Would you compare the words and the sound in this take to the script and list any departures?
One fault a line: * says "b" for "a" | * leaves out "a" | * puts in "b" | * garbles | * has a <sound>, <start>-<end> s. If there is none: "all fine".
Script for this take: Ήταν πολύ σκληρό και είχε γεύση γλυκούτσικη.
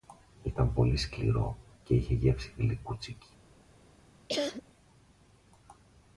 * has a cough, 4.3-4.6 s